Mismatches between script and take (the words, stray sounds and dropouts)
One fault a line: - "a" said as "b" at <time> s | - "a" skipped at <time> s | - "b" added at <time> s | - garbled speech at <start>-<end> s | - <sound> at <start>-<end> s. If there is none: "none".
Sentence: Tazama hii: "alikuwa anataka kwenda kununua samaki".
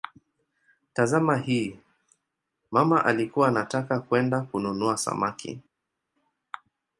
- "mama" added at 2.7 s